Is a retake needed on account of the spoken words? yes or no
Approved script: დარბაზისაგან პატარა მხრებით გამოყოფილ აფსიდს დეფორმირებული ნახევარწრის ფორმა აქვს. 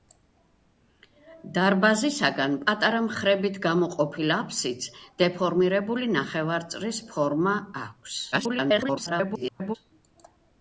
yes